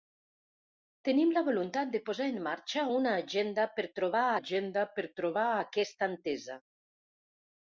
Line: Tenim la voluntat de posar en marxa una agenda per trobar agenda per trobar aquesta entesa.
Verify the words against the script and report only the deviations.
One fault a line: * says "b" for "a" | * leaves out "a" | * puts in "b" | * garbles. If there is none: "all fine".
all fine